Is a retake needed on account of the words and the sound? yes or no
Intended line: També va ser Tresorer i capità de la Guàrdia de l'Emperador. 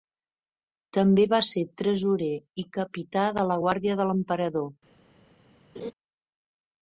yes